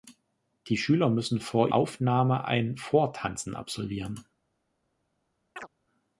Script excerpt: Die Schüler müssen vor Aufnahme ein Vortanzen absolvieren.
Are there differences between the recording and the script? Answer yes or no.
no